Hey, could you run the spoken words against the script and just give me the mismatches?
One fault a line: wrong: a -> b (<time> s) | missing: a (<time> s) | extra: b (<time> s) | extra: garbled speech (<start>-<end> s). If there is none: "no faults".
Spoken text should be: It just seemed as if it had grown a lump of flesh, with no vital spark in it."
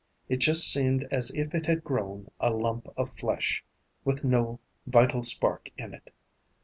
no faults